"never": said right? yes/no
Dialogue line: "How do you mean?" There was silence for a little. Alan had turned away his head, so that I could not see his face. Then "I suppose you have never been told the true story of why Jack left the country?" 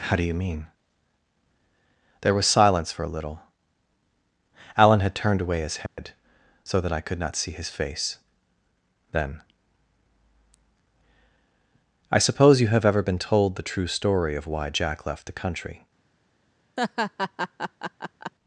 no